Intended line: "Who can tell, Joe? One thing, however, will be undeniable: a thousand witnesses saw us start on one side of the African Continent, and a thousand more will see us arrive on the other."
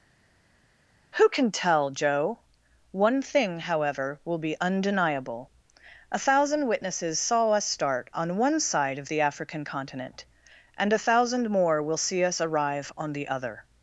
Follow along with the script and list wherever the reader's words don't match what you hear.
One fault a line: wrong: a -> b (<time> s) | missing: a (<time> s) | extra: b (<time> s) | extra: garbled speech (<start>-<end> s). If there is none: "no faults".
no faults